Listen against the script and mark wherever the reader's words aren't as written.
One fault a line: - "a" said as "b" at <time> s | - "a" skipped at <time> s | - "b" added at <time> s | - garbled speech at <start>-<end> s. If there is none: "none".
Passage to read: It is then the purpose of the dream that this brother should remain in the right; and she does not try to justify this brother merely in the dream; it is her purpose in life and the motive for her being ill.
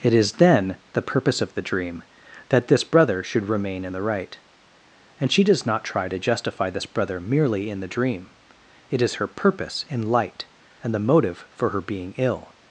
- "life" said as "light" at 10.0 s